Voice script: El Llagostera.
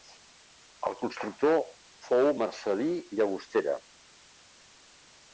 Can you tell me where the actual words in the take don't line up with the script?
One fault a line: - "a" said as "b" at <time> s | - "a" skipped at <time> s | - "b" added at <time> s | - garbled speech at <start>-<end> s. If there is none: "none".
- "constructor fou Marcel·lí" added at 1.0 s